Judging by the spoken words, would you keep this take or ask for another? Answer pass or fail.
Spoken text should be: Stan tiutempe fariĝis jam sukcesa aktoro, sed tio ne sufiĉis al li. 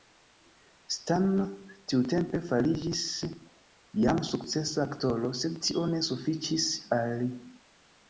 pass